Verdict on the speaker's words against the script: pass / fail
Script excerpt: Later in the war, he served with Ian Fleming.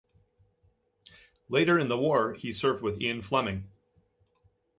pass